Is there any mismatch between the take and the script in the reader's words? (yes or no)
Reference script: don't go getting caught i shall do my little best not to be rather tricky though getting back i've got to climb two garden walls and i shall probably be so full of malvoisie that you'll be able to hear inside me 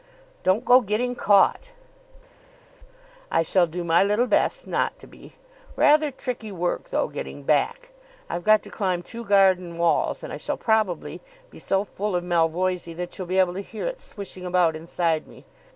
yes